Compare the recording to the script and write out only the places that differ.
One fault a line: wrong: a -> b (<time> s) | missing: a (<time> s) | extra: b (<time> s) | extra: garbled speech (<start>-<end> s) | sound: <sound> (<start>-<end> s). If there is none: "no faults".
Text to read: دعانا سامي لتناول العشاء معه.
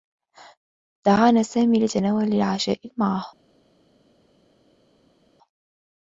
no faults